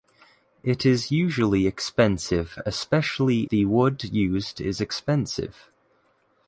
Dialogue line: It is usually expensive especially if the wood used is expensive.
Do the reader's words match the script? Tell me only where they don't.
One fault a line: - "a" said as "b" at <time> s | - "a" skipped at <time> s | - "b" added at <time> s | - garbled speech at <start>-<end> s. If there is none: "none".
- "if" skipped at 3.4 s